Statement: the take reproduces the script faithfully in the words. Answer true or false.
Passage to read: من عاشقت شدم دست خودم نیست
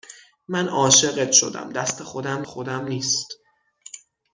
false